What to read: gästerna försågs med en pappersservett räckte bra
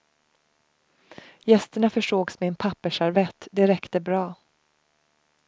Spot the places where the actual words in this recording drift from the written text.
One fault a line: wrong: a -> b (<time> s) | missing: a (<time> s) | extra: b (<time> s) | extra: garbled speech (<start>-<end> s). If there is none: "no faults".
extra: det (3.5 s)